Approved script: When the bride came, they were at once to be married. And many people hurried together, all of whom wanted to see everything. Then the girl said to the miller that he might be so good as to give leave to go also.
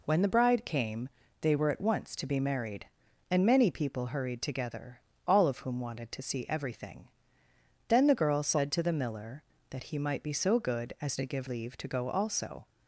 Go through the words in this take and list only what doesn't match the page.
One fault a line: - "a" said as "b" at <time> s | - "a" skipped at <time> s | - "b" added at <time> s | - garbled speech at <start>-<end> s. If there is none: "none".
none